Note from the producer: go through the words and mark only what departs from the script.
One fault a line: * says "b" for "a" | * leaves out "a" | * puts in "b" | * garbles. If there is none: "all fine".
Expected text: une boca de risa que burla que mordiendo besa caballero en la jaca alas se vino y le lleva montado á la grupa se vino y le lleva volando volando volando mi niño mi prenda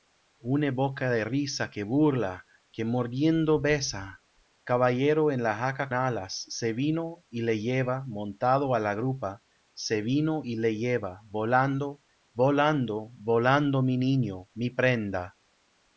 all fine